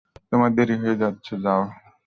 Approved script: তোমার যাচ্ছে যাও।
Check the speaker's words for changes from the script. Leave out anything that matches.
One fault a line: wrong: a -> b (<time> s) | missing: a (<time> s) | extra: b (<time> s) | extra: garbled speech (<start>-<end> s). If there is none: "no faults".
extra: দেরি হয়ে (0.6 s)